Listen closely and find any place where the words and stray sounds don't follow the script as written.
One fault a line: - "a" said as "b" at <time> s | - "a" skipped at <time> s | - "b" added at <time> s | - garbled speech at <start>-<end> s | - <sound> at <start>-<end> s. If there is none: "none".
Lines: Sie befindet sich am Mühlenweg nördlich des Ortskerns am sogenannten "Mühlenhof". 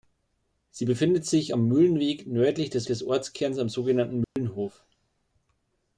- "des" added at 2.8 s
- dropout at 4.2-4.4 s